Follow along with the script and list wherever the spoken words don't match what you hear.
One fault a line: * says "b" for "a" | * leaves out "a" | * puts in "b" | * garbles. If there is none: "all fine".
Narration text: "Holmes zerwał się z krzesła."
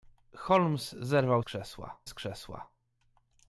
* says "krzesła" for "się"